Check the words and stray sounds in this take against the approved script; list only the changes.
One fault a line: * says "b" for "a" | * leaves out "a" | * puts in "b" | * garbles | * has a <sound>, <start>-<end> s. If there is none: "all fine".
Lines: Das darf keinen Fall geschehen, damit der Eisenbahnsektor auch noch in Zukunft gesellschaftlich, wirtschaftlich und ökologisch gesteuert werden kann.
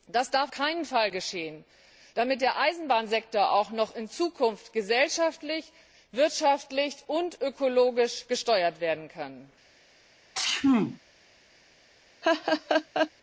* has a sneeze, 10.3-11.0 s
* has a laugh, 12.2-13.1 s